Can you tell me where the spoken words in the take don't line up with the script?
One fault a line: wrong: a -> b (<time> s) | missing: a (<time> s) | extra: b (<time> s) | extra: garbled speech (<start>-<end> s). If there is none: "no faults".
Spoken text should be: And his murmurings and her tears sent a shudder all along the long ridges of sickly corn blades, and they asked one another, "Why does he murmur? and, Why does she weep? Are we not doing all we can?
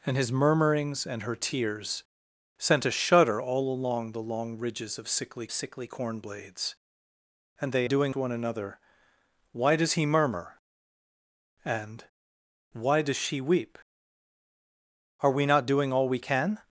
extra: sickly (5.5 s)
wrong: asked -> doing (7.9 s)